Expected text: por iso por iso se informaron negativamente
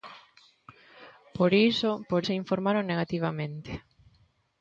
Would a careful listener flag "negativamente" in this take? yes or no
no